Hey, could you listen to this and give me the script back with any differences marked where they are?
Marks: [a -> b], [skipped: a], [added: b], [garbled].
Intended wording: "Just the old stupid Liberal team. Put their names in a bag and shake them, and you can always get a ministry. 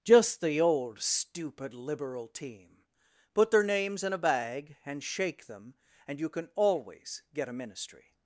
"Just the old stupid Liberal team. Put their names in a bag and shake them, and you can always get a ministry.